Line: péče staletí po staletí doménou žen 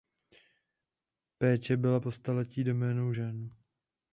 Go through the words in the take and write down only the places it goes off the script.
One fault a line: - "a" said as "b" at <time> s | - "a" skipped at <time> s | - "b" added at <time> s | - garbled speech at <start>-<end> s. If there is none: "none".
- "staletí" said as "byla" at 1.8 s